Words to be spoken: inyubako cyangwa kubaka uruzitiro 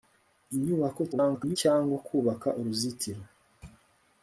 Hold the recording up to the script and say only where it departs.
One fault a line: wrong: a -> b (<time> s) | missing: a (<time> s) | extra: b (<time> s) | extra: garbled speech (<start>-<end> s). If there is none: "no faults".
extra: garbled speech (1.1-1.6 s)